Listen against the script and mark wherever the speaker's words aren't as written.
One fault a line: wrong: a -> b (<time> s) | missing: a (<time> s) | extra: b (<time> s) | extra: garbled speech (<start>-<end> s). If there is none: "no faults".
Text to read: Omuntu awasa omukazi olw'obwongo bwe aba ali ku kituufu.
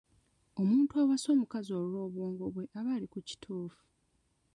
no faults